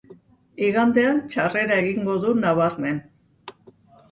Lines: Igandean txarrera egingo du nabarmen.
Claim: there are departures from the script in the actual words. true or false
false